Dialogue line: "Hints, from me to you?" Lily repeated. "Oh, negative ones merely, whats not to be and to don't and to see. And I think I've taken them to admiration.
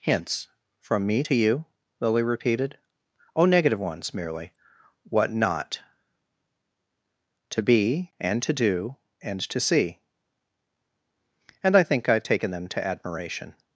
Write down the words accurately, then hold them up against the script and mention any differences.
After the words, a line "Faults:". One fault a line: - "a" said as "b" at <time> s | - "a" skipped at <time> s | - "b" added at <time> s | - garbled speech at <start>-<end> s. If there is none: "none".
"Hints, from me to you?" Lily repeated. "Oh, negative ones merely, what not to be and to do and to see. And I think I've taken them to admiration.
Faults:
- "whats" said as "what" at 5.0 s
- "don't" said as "do" at 8.5 s